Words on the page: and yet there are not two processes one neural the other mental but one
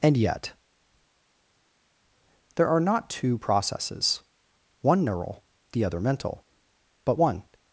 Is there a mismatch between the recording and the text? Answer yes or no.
no